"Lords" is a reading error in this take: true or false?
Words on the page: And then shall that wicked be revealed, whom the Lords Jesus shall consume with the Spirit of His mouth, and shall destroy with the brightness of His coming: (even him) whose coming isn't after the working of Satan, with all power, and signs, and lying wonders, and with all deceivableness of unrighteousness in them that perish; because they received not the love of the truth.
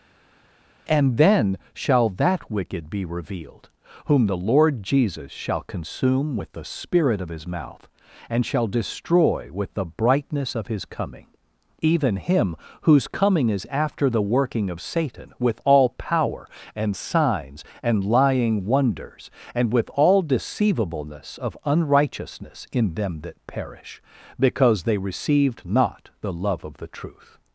true